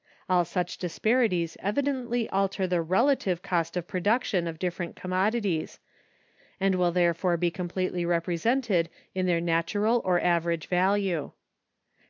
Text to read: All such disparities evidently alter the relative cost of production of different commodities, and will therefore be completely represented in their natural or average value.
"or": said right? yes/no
yes